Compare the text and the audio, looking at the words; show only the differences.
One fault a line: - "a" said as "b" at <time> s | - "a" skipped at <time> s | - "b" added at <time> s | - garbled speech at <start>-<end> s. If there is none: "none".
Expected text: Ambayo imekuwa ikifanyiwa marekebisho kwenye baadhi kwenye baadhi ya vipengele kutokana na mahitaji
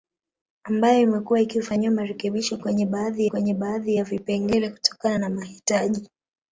none